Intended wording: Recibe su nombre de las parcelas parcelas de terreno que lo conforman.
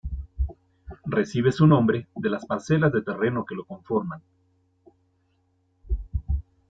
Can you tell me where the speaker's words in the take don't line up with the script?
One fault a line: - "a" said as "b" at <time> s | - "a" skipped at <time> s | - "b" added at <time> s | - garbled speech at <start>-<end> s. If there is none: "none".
- "parcelas" skipped at 2.9 s